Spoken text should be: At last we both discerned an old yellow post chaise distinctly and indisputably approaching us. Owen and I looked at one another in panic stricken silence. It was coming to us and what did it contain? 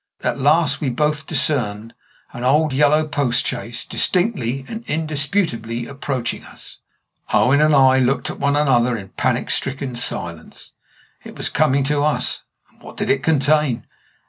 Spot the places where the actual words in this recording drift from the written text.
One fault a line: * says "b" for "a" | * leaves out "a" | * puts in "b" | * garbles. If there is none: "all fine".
all fine